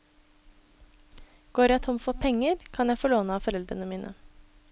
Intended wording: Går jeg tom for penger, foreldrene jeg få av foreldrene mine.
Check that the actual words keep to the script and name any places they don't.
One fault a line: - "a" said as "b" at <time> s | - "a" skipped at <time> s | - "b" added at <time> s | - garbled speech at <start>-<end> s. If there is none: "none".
- "foreldrene" said as "kan" at 2.7 s
- "låne" added at 3.1 s